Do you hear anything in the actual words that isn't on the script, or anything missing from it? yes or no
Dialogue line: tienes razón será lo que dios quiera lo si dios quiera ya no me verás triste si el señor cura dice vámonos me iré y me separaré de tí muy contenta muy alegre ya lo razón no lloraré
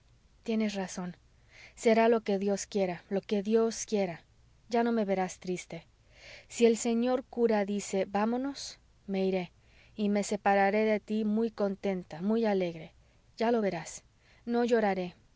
yes